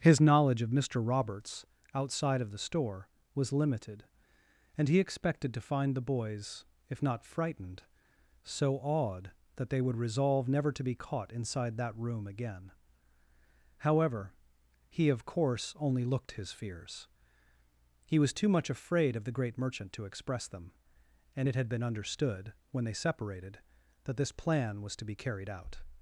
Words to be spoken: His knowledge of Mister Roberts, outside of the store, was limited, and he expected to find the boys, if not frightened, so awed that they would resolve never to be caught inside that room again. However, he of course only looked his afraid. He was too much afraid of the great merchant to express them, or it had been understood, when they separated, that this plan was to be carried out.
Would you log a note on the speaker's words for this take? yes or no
yes